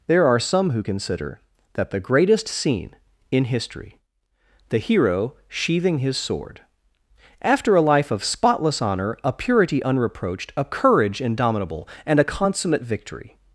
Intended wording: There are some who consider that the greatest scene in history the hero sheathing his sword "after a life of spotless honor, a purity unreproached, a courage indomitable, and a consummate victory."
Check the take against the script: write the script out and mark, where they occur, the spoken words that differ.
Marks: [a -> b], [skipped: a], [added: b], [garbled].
There are some who consider that the greatest scene in history the hero sheathing his sword "after a life of spotless honor, a purity unreproached, a courage indomitable, and a consummate victory."